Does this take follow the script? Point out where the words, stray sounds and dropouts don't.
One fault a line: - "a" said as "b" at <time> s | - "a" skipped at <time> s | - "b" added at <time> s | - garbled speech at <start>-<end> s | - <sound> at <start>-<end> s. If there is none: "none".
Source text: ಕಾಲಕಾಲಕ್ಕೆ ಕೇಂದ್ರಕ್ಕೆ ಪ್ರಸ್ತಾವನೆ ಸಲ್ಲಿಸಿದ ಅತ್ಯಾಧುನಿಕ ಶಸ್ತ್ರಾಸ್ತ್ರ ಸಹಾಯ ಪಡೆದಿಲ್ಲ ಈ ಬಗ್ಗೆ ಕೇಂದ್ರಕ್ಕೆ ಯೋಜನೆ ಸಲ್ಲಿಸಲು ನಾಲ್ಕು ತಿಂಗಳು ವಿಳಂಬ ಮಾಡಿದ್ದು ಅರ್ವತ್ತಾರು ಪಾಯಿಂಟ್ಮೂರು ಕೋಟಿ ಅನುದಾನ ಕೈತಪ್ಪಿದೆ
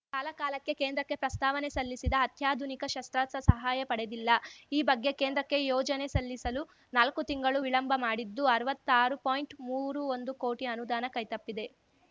- "ಒಂದು" added at 10.2 s